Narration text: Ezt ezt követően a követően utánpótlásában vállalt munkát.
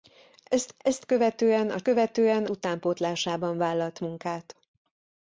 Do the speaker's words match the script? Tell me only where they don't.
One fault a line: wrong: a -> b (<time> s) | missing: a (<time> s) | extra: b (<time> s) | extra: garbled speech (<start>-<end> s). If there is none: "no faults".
no faults